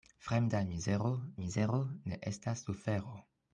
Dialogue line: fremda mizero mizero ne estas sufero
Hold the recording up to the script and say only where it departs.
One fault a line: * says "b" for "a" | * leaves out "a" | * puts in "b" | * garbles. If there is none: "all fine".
all fine